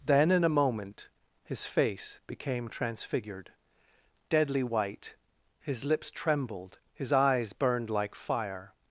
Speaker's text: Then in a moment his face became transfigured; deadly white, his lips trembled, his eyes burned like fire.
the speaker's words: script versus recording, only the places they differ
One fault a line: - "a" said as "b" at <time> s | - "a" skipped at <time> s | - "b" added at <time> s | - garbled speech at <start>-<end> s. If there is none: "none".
none